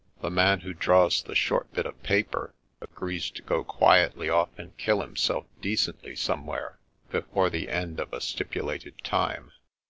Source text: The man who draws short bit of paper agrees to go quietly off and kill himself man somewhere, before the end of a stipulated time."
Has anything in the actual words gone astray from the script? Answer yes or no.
yes